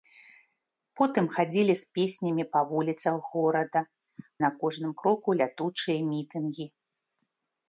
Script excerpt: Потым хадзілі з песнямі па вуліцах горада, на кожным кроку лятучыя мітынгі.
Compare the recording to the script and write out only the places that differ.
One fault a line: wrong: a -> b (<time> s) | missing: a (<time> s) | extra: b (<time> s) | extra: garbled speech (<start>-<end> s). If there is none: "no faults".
no faults